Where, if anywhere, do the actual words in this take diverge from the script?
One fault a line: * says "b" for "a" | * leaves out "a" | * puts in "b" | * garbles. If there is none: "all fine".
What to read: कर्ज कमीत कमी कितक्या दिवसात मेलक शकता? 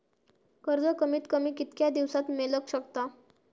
all fine